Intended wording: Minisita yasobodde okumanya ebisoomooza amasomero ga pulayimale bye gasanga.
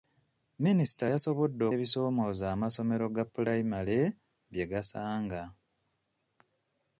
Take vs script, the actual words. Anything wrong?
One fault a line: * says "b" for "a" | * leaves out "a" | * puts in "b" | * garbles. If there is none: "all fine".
* leaves out "okumanya"